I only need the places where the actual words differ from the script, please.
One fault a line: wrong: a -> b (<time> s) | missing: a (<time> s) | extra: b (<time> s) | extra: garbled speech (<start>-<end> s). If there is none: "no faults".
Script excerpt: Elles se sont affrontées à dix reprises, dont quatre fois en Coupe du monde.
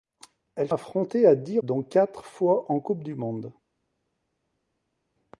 missing: se sont (0.7 s)
missing: reprises (1.6 s)